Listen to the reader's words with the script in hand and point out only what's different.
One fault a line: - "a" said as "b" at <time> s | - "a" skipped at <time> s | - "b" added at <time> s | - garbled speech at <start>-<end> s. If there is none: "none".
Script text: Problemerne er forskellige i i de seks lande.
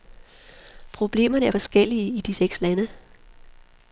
- "i" skipped at 2.2 s